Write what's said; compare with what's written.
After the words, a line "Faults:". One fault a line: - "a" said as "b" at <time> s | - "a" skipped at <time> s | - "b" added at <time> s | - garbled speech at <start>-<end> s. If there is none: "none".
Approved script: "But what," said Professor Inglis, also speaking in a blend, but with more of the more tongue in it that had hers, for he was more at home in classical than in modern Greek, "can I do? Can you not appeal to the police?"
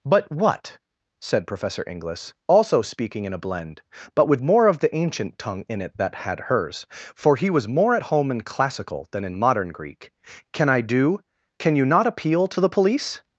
"But what," said Professor Inglis, also speaking in a blend, but with more of the ancient tongue in it that had hers, for he was more at home in classical than in modern Greek, "can I do? Can you not appeal to the police?"
Faults:
- "more" said as "ancient" at 4.9 s